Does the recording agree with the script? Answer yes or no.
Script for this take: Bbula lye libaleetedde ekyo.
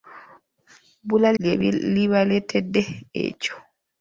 yes